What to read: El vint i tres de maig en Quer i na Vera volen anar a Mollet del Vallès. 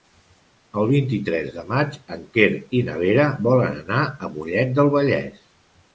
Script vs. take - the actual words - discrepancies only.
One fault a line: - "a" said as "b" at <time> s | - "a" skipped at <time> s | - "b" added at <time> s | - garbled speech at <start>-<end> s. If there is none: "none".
none